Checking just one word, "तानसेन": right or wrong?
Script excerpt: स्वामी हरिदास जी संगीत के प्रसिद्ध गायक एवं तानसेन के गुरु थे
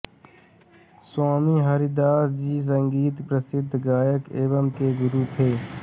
wrong